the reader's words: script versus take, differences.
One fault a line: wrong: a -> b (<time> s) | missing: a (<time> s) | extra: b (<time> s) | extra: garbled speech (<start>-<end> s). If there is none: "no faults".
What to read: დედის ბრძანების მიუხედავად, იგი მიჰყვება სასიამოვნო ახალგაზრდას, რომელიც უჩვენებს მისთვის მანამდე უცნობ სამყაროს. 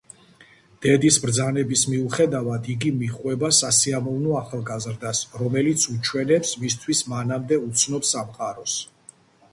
no faults